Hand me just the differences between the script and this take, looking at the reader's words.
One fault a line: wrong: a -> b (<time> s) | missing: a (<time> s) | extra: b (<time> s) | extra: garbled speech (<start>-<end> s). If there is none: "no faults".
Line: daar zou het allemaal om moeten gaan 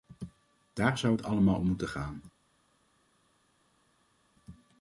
no faults